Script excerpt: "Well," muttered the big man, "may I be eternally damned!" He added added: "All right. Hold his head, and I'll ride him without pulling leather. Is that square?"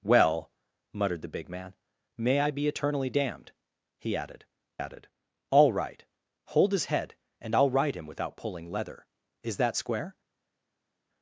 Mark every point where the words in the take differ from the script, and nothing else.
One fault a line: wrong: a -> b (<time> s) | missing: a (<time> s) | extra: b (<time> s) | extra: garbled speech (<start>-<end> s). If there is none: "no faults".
no faults